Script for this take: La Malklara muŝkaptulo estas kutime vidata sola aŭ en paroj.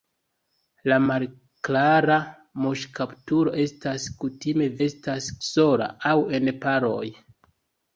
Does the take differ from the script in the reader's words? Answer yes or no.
yes